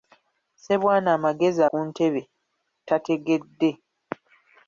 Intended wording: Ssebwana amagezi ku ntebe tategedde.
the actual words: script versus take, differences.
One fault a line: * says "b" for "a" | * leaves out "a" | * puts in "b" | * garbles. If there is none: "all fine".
all fine